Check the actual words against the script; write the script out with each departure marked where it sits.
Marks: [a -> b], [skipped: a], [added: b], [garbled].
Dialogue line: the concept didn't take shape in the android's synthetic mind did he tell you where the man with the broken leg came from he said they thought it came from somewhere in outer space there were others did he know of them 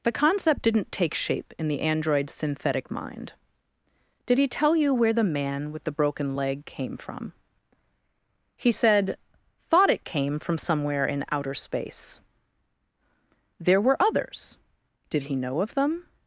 the concept didn't take shape in the android's synthetic mind did he tell you where the man with the broken leg came from he said [skipped: they] thought it came from somewhere in outer space there were others did he know of them